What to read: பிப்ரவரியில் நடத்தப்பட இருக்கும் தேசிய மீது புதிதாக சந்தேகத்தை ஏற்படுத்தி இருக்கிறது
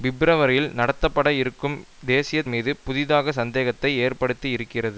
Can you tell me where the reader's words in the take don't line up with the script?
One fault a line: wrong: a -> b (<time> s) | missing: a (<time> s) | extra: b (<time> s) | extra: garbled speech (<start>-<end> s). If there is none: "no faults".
no faults